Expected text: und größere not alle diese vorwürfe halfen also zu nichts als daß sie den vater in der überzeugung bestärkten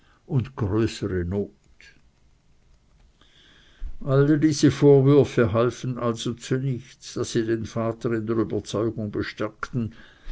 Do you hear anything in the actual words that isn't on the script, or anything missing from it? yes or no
yes